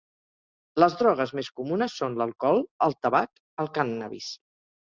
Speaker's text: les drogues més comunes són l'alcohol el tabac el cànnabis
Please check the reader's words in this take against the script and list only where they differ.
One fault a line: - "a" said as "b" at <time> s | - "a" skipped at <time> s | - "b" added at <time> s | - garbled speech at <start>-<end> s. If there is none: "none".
none